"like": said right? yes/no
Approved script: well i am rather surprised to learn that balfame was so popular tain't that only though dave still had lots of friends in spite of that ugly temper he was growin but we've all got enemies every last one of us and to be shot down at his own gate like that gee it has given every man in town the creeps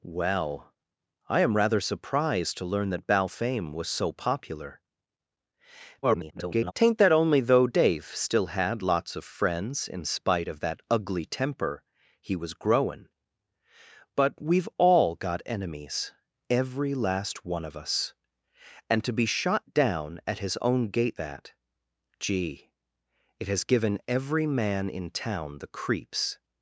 no